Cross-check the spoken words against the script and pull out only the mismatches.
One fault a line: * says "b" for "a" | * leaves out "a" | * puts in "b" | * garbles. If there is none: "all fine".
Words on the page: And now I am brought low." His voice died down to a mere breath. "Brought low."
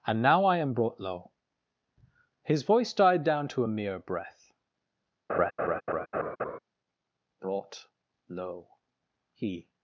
* puts in "He"